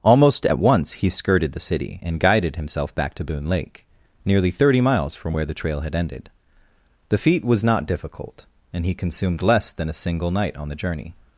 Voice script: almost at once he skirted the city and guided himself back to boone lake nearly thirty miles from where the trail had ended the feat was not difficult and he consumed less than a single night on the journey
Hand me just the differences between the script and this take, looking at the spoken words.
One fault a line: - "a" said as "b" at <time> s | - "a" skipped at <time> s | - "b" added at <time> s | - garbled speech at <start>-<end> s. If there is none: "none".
none